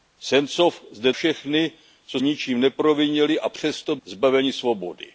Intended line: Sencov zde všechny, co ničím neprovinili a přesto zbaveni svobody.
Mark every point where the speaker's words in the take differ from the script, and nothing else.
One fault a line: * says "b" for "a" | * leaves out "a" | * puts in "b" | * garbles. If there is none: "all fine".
all fine